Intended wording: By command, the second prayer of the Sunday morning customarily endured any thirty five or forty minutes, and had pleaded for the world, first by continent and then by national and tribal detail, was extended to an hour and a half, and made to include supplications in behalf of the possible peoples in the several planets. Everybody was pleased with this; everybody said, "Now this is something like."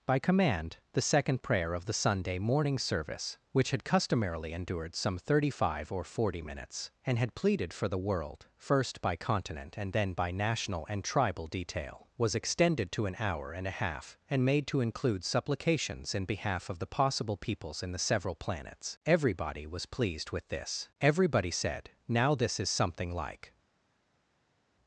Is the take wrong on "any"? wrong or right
wrong